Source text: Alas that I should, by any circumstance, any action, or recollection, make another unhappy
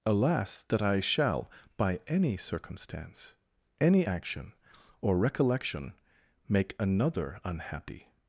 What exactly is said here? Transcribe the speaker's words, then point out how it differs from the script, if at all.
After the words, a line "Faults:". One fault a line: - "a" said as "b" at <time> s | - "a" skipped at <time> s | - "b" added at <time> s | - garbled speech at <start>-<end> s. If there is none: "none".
Alas that I shall, by any circumstance, any action, or recollection, make another unhappy
Faults:
- "should" said as "shall" at 1.0 s